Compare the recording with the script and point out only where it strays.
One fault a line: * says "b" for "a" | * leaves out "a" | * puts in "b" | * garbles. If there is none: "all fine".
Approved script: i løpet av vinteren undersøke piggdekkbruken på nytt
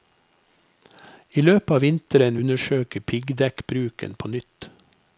all fine